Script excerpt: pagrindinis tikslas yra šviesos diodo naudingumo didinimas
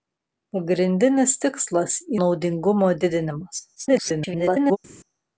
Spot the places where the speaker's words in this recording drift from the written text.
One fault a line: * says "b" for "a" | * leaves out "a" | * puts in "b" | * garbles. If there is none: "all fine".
* leaves out "yra šviesos diodo"
* garbles